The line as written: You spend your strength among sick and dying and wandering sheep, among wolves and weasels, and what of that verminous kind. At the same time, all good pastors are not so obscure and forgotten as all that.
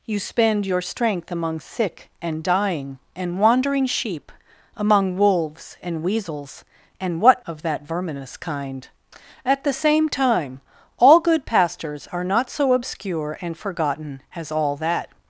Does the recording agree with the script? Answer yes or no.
yes